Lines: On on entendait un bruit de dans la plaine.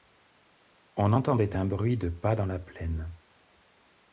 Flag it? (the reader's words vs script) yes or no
yes